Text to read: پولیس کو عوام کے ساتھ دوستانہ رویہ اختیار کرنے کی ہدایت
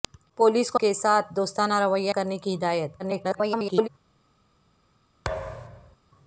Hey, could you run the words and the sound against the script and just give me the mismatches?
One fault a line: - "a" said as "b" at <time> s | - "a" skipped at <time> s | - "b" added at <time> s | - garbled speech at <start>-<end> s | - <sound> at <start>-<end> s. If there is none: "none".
- "عوام" skipped at 0.8 s
- "اختیار" skipped at 2.1 s
- garbled speech at 3.0-3.9 s
- thud at 5.2-6.0 s